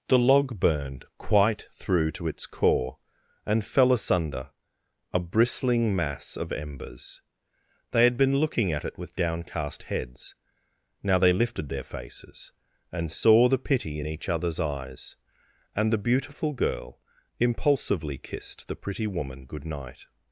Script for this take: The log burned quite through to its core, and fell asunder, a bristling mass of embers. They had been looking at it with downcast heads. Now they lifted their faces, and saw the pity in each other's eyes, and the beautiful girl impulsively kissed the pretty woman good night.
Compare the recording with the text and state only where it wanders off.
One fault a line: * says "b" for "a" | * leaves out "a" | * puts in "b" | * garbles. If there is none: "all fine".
all fine